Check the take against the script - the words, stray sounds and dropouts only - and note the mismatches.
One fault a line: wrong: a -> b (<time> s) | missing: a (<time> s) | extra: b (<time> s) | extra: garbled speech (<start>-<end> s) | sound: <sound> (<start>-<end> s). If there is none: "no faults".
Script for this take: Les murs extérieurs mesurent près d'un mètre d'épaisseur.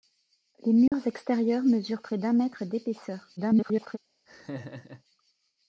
sound: dropout (0.9-0.9 s)
extra: garbled speech (3.4-4.0 s)
sound: laugh (4.3-5.0 s)